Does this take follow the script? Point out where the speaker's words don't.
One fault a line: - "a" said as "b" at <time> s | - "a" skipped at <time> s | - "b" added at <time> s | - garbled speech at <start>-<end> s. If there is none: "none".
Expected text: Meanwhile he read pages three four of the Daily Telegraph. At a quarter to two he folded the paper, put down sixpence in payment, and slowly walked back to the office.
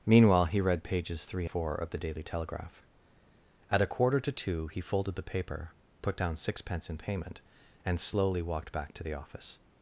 none